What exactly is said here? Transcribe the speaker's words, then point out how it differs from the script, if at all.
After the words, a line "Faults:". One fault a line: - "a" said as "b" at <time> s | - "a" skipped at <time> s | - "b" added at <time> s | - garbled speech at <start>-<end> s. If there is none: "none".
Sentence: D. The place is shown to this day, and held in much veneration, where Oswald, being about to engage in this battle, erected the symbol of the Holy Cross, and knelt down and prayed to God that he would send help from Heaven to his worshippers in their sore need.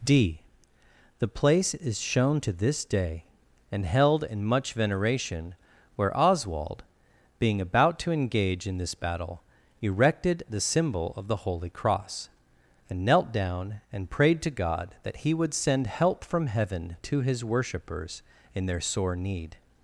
D. The place is shown to this day, and held in much veneration, where Oswald, being about to engage in this battle, erected the symbol of the Holy Cross, and knelt down and prayed to God that he would send help from Heaven to his worshippers in their sore need.
Faults:
none